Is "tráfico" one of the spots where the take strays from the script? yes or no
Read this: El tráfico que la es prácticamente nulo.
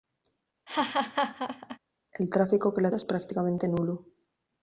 no